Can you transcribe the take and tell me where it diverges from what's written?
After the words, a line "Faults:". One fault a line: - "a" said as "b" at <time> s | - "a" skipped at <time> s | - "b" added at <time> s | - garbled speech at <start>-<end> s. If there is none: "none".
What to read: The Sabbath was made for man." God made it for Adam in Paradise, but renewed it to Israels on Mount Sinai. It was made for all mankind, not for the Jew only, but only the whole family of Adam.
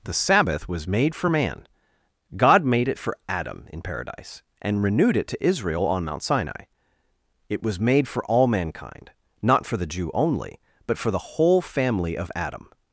The Sabbath was made for man." God made it for Adam in Paradise, and renewed it to Israel on Mount Sinai. It was made for all mankind, not for the Jew only, but for the whole family of Adam.
Faults:
- "but" said as "and" at 4.6 s
- "Israels" said as "Israel" at 5.4 s
- "only" said as "for" at 11.0 s